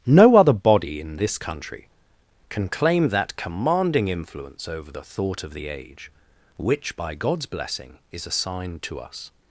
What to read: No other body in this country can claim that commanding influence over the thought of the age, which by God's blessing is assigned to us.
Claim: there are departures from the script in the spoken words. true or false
false